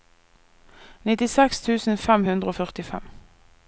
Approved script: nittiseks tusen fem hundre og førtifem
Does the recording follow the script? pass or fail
pass